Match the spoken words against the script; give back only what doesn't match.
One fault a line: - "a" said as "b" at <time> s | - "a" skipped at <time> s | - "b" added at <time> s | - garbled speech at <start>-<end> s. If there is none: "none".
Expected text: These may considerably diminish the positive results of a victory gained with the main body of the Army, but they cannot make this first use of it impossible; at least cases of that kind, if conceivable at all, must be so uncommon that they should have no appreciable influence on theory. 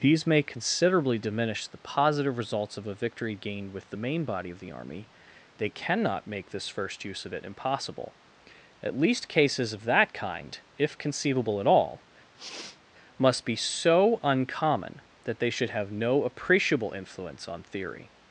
- "but" skipped at 5.1 s